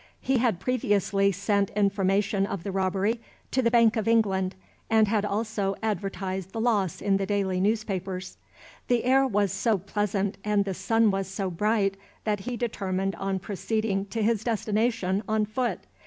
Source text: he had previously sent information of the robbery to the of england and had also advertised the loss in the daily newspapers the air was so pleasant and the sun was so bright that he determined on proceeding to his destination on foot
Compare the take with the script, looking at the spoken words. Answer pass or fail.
fail